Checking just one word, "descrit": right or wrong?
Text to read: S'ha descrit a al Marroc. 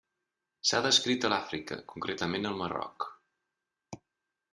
right